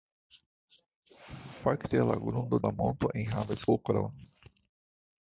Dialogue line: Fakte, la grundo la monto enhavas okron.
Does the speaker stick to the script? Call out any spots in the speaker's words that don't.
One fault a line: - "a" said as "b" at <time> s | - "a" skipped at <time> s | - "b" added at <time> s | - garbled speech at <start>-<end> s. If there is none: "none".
none